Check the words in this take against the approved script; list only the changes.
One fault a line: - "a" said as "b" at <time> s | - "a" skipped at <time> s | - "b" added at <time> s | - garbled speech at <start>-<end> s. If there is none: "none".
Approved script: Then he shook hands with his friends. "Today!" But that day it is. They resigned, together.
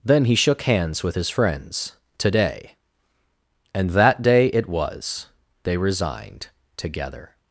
- "But" said as "And" at 3.7 s
- "is" said as "was" at 4.7 s